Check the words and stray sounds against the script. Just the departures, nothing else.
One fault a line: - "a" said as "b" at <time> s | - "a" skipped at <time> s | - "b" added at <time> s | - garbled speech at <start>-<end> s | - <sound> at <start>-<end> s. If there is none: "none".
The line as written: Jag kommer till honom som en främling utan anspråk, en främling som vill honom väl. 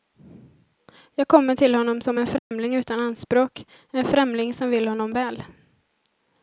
- dropout at 2.4-2.5 s